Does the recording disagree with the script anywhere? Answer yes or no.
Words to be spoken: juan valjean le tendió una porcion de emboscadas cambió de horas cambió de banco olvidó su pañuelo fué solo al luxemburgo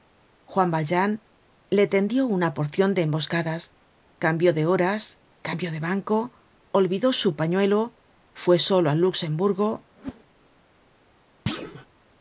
no